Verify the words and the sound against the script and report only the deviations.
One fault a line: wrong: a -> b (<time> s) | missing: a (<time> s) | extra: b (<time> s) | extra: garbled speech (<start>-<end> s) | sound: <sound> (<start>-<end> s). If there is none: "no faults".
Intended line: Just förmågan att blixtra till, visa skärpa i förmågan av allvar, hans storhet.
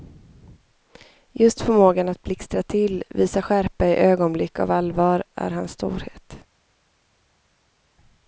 wrong: förmågan -> ögonblick (4.0 s)
extra: är (5.3 s)